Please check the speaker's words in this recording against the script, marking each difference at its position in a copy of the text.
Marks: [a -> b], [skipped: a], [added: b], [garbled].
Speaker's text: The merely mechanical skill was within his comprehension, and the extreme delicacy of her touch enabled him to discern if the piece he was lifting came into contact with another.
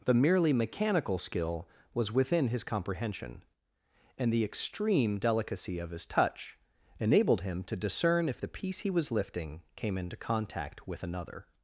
The merely mechanical skill was within his comprehension, and the extreme delicacy of [her -> his] touch enabled him to discern if the piece he was lifting came into contact with another.